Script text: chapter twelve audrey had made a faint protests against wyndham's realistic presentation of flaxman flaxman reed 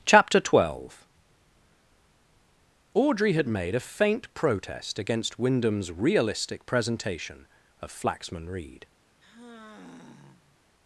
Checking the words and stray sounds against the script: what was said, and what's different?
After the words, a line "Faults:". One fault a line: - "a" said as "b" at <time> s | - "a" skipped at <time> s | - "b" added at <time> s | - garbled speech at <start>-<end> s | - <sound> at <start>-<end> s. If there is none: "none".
chapter twelve audrey had made a faint protest against wyndham's realistic presentation of flaxman reed
Faults:
- "protests" said as "protest" at 4.3 s
- "flaxman" skipped at 8.5 s
- sigh at 9.2-10.6 s